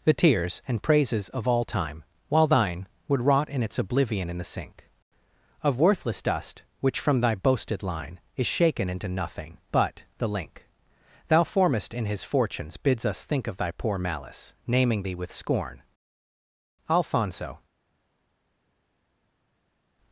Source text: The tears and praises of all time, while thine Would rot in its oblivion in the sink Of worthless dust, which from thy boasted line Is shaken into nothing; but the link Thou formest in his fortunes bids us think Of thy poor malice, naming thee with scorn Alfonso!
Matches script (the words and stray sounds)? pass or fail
pass